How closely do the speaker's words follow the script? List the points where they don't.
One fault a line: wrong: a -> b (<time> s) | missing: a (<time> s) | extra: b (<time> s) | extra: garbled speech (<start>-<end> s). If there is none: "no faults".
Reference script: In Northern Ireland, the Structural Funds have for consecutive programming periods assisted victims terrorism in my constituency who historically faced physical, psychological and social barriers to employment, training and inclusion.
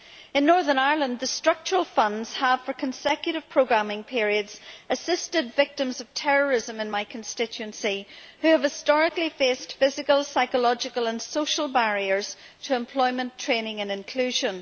extra: of (6.0 s)
extra: have (8.5 s)